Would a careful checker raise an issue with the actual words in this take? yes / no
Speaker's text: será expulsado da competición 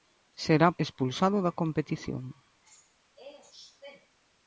no